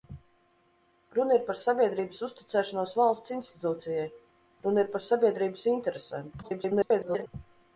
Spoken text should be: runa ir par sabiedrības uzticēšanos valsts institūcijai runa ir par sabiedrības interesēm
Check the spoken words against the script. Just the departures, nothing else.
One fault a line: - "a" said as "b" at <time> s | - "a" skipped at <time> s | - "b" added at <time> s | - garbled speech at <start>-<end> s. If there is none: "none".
- garbled speech at 6.4-7.3 s